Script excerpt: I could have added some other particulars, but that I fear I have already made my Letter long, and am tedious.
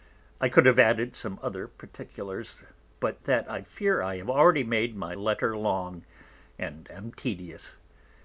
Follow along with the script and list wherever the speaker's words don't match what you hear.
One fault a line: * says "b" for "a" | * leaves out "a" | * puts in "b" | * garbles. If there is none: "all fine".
all fine